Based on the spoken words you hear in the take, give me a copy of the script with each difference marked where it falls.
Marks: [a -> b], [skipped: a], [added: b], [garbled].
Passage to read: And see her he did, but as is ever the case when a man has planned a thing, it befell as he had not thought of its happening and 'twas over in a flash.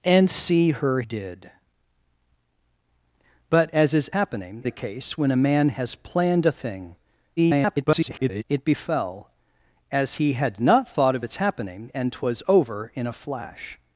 And see her [skipped: he] did, but as is [ever -> happening] the case when a man has planned a thing, [garbled] it befell as he had not thought of its happening and 'twas over in a flash.